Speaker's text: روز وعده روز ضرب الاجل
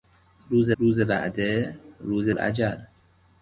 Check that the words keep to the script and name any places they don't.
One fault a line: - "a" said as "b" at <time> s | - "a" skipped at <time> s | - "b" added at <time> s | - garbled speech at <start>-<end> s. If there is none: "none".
- "روز" added at 0.8 s
- "ضرب" skipped at 2.3 s